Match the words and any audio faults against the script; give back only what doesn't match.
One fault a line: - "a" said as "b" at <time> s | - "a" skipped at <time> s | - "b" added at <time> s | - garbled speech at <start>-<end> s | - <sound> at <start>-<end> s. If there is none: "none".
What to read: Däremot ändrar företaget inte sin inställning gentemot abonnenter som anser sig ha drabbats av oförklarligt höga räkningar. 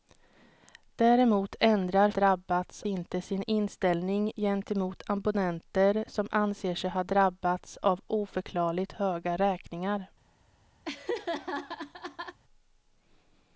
- "företaget" said as "drabbats" at 2.1 s
- laugh at 10.8-12.4 s